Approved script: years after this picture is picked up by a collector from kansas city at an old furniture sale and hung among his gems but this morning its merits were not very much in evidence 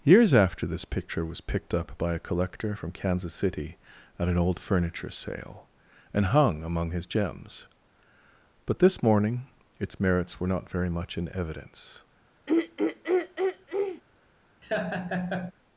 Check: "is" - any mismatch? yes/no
yes